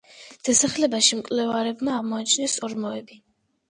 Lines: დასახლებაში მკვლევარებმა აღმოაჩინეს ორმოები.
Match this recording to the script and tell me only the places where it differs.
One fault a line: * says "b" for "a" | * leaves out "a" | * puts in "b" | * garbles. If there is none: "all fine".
all fine